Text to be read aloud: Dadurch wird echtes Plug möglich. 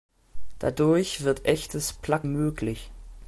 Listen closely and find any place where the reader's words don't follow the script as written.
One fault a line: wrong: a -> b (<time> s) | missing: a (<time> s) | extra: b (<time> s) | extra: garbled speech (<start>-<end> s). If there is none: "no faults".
no faults